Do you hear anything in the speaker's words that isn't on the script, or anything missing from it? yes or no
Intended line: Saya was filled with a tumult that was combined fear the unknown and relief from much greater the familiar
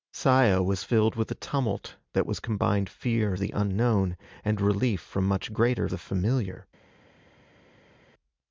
no